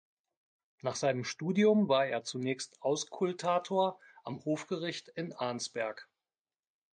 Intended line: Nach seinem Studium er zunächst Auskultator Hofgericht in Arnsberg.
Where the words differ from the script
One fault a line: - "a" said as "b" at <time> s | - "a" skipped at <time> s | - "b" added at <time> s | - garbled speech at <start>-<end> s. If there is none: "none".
- "war" added at 1.9 s
- "am" added at 4.2 s